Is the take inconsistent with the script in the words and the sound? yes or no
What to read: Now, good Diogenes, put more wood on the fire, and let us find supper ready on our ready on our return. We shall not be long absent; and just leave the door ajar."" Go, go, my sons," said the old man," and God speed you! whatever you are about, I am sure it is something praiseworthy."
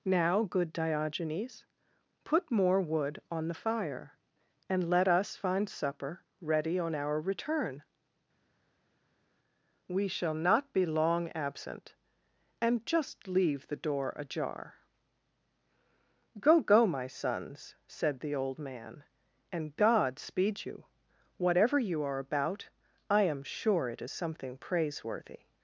yes